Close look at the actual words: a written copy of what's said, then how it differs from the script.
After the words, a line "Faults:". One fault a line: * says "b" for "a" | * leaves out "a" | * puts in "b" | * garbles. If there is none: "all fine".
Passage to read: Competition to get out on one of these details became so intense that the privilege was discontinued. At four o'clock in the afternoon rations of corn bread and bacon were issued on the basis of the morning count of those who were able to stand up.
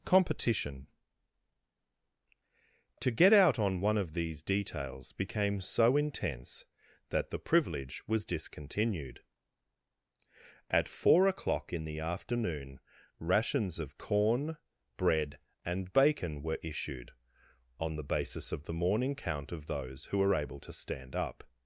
Competition to get out on one of these details became so intense that the privilege was discontinued. At four o'clock in the afternoon rations of corn bread and bacon were issued on the basis of the morning count of those who were able to stand up.
Faults:
all fine